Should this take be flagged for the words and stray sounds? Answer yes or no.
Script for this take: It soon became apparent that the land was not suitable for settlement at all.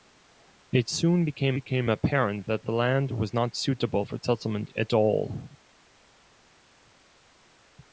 yes